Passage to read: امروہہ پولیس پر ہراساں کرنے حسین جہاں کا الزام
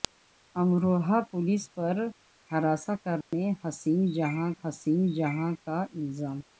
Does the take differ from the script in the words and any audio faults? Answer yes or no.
yes